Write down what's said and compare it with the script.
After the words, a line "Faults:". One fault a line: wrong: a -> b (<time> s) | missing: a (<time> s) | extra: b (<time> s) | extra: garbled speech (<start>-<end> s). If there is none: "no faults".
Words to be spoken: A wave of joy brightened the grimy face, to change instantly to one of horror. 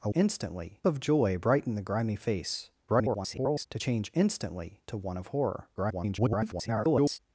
A instantly of joy brightened the grimy face, [garbled] to change instantly to one of horror. [garbled]
Faults:
wrong: wave -> instantly (0.1 s)
extra: garbled speech (2.9-3.7 s)
extra: garbled speech (5.8-7.2 s)